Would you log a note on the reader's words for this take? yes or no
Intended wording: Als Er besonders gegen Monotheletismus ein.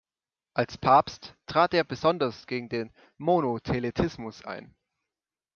yes